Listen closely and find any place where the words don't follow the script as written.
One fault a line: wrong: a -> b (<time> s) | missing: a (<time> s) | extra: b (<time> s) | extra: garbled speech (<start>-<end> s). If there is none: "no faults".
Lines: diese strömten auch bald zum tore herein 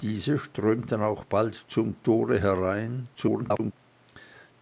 extra: garbled speech (3.1-3.7 s)